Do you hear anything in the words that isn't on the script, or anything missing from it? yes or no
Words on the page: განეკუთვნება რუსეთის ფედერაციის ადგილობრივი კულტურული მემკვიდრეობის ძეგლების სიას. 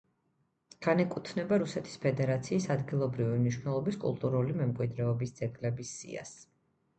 yes